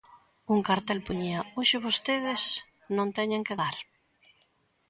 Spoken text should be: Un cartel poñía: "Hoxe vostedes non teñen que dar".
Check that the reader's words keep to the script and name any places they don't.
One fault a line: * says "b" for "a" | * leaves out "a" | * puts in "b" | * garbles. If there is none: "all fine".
all fine